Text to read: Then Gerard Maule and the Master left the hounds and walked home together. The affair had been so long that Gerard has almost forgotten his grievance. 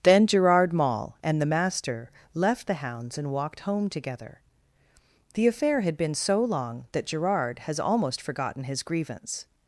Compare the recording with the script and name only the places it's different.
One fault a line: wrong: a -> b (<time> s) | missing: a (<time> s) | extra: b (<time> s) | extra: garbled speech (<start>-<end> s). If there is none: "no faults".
no faults